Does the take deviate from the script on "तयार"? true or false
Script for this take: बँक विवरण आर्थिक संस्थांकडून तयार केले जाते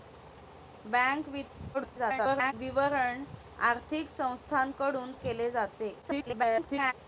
true